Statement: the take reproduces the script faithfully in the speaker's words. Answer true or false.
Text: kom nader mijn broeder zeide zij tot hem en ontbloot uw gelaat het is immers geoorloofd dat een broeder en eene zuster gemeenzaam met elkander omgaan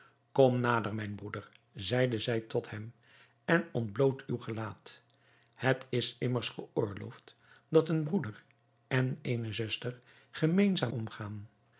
false